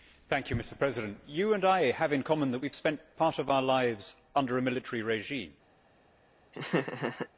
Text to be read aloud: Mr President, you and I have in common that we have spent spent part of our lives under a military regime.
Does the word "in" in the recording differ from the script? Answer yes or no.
no